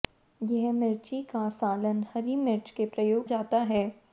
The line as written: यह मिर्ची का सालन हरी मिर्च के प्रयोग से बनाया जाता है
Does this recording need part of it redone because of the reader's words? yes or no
yes